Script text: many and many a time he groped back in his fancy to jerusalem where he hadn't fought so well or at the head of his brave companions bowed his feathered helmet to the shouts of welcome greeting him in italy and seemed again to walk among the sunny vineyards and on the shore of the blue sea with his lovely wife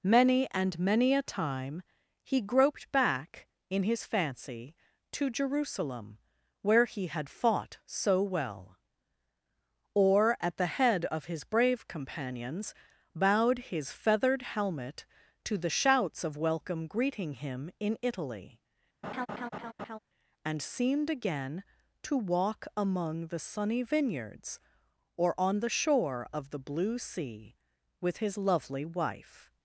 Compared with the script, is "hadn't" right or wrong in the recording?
wrong